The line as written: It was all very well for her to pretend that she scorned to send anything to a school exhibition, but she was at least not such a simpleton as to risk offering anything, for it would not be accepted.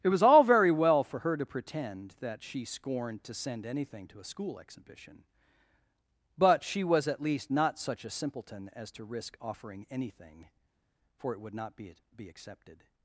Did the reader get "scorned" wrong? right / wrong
right